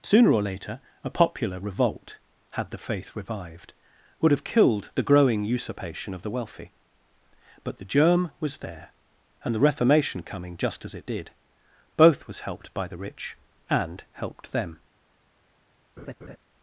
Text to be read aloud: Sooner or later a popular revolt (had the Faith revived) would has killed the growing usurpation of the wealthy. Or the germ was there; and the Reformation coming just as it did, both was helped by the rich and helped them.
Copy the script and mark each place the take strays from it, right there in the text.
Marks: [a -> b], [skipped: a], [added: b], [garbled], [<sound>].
Sooner or later a popular revolt (had the Faith revived) would [has -> have] killed the growing usurpation of the wealthy. [Or -> But] the germ was there; and the Reformation coming just as it did, both was helped by the rich and helped them. [laugh]